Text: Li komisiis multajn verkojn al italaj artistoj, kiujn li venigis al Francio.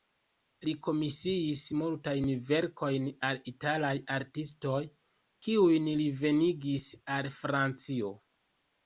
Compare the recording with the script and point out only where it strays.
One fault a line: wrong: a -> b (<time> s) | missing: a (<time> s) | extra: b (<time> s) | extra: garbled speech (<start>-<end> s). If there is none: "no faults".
no faults